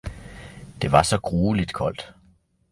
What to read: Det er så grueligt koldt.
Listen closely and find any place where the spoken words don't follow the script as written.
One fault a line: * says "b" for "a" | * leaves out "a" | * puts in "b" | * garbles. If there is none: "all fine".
* says "var" for "er"